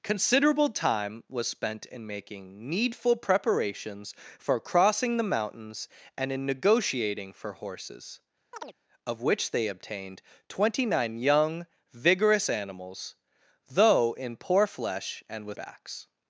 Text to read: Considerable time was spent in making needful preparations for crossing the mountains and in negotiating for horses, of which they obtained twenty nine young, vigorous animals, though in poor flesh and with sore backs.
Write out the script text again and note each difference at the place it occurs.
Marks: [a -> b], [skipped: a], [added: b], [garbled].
Considerable time was spent in making needful preparations for crossing the mountains and in negotiating for horses, of which they obtained twenty nine young, vigorous animals, though in poor flesh and with [skipped: sore] backs.